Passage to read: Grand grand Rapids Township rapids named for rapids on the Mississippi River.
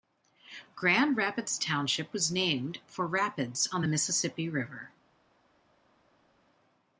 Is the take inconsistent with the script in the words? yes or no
yes